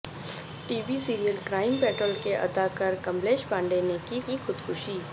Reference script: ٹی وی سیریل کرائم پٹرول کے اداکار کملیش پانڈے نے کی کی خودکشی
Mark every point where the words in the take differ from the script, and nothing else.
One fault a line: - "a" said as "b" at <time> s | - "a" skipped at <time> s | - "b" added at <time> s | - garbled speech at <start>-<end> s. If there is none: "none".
none